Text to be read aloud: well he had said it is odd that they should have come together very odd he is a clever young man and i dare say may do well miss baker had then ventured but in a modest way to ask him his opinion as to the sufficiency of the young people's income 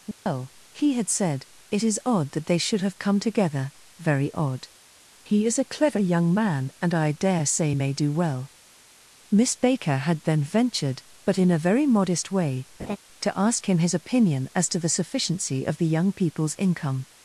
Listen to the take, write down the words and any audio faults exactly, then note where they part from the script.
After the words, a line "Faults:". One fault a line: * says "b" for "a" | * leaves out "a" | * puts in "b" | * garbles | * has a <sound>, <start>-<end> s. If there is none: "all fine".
well he had said it is odd that they should have come together very odd he is a clever young man and i dare say may do well miss baker had then ventured but in a very modest way to ask him his opinion as to the sufficiency of the young people's income
Faults:
* has a dropout, 0.1-0.3 s
* puts in "very"
* has a laugh, 12.8-13.0 s